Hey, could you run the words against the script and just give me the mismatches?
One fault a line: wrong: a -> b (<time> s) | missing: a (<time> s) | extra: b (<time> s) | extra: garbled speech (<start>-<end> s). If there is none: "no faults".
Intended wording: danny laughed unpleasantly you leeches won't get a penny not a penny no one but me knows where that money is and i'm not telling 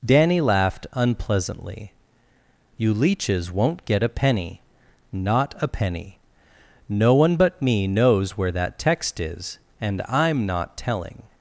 wrong: money -> text (8.8 s)